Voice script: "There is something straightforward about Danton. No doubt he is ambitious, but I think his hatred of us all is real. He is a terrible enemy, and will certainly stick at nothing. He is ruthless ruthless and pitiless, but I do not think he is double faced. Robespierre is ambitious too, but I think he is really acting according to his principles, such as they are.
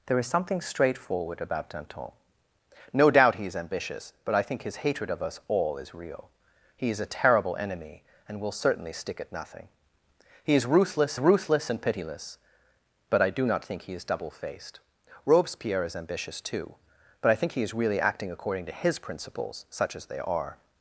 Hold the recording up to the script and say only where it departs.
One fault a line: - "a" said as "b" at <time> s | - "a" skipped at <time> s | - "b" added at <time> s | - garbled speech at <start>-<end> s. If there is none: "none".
none